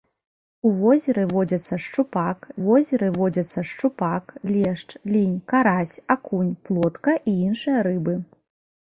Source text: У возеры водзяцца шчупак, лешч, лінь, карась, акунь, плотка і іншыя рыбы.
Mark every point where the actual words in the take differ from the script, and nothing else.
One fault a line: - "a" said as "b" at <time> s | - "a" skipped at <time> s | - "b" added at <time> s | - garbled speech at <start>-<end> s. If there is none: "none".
- "возеры водзяцца шчупак" added at 2.6 s